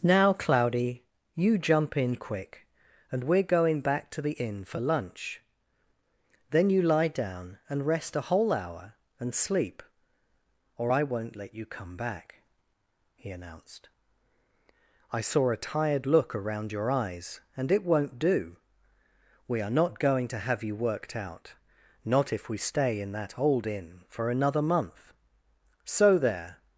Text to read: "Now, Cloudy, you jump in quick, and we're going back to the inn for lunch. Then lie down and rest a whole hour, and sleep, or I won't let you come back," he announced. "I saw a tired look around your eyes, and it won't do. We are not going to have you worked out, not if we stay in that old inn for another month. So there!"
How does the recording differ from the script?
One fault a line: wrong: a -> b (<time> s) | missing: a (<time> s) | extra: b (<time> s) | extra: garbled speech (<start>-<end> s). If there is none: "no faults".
extra: you (6.7 s)